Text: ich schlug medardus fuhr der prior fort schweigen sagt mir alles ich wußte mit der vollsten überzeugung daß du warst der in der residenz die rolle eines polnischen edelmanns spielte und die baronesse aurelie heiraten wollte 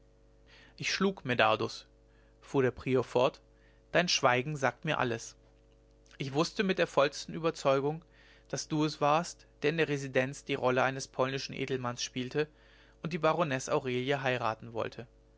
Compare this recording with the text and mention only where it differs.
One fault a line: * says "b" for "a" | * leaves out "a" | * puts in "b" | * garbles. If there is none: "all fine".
* puts in "dein"
* puts in "es"